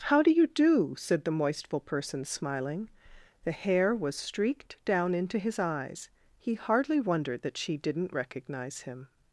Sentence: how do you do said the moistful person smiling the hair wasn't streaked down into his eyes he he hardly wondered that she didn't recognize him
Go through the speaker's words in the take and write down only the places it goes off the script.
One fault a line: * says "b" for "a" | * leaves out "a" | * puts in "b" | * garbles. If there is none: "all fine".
* says "was" for "wasn't"
* leaves out "he"